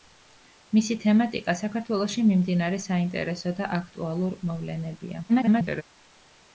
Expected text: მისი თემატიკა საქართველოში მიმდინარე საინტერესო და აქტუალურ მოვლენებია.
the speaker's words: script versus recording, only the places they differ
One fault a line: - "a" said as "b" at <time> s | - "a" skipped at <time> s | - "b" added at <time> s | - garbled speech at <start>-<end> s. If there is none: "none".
- garbled speech at 5.3-5.8 s